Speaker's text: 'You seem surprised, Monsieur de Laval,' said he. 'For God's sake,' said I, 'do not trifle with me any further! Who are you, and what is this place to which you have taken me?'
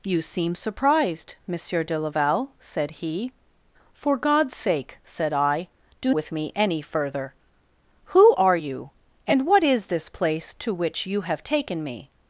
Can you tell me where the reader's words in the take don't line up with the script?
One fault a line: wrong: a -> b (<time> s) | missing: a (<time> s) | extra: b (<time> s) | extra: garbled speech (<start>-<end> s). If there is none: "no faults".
missing: not trifle (6.1 s)